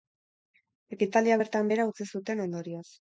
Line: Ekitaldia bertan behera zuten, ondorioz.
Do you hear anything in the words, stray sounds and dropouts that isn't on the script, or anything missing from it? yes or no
yes